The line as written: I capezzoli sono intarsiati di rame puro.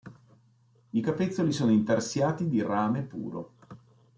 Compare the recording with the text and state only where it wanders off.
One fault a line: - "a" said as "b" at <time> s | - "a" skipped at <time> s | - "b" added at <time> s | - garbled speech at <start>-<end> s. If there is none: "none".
none